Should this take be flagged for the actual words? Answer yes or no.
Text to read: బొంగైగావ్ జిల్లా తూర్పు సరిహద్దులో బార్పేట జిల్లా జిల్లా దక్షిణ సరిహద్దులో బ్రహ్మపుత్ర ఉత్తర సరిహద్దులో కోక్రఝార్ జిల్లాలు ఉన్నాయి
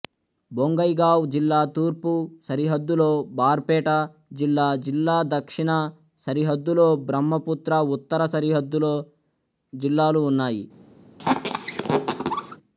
yes